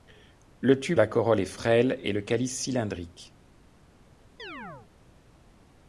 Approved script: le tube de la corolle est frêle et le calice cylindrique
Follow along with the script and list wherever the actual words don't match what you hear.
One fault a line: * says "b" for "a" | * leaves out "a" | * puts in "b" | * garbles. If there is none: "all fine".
* leaves out "de"